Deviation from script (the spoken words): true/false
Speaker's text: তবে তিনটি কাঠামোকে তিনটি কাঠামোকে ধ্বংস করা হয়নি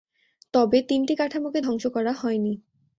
true